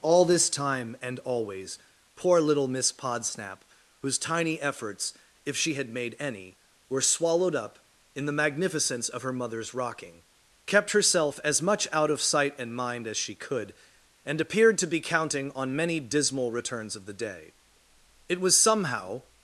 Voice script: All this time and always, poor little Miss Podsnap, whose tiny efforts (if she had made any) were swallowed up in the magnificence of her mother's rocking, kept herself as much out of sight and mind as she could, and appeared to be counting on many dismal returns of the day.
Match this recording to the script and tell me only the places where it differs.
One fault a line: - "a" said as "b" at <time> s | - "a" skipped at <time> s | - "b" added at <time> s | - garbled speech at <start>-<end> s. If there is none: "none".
- "It was somehow" added at 18.3 s